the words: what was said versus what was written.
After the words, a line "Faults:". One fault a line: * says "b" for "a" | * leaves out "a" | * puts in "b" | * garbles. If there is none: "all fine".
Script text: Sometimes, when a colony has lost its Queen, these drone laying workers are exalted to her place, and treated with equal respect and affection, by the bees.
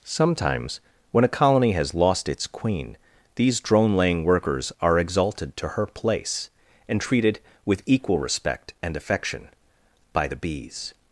Sometimes, when a colony has lost its Queen, these drone laying workers are exalted to her place, and treated with equal respect and affection, by the bees.
Faults:
all fine